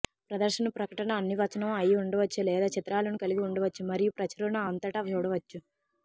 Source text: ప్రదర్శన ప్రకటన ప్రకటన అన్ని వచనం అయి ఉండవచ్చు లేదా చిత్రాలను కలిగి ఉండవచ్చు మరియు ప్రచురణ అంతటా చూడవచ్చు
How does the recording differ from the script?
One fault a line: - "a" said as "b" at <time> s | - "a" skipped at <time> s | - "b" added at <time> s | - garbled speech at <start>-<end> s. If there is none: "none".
- "ప్రకటన" skipped at 1.2 s